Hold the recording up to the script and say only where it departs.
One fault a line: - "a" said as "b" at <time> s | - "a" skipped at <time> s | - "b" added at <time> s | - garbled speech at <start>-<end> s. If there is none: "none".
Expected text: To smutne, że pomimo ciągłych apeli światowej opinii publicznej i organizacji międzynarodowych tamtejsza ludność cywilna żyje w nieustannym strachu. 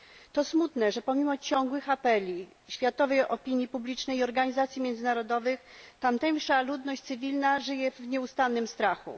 none